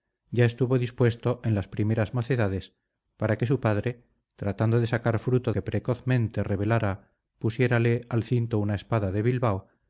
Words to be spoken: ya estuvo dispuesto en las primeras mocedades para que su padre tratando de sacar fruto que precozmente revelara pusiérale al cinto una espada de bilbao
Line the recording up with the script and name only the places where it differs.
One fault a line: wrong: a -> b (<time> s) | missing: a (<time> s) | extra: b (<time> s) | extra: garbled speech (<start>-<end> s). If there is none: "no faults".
no faults